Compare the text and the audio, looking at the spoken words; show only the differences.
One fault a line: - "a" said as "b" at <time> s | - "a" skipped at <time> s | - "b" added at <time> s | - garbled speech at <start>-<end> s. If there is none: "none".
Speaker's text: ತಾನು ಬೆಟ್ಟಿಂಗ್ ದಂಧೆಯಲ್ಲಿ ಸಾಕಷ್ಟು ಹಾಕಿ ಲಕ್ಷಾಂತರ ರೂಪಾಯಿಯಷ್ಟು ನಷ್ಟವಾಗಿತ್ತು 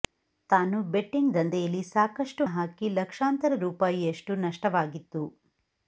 none